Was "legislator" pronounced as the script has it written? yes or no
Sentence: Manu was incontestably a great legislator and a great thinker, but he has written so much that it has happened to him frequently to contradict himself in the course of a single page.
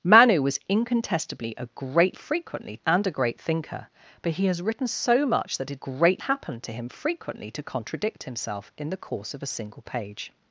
no